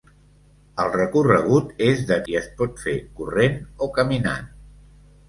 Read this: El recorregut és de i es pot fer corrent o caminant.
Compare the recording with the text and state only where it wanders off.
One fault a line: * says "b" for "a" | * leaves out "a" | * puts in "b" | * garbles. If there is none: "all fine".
all fine